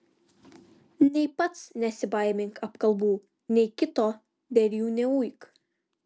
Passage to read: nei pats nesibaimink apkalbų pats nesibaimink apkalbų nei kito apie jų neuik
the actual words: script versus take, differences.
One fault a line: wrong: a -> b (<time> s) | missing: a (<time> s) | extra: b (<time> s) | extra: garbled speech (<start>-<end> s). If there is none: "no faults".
missing: pats nesibaimink apkalbų (3.1 s)
wrong: apie -> dėl (4.6 s)